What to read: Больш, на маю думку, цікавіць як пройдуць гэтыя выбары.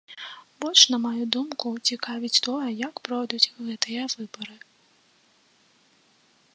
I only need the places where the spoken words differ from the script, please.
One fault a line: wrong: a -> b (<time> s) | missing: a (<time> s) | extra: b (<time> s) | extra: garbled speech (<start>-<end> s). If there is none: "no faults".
extra: тое (2.5 s)